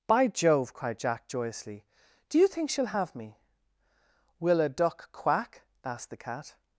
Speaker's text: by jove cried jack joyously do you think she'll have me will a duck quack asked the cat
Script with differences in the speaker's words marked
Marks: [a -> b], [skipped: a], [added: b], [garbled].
by jove cried jack joyously do you think she'll have me will a duck quack asked the cat